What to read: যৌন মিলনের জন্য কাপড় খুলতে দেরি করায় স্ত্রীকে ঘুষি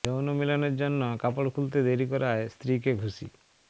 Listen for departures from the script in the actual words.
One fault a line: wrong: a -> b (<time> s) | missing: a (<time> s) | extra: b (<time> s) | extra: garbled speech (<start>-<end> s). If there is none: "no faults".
no faults